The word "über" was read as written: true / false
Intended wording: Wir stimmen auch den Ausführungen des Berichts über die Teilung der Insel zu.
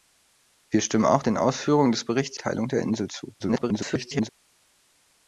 false